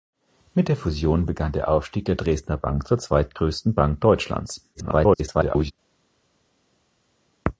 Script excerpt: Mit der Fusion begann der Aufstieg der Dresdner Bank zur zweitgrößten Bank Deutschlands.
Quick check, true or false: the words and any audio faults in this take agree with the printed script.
false